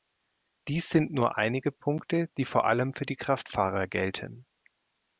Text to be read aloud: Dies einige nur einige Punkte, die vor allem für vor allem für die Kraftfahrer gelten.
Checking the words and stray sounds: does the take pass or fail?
fail